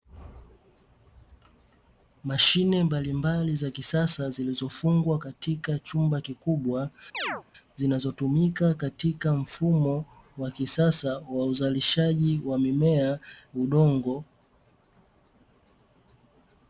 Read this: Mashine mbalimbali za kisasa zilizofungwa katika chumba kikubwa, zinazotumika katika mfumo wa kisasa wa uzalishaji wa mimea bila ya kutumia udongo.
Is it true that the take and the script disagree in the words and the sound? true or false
true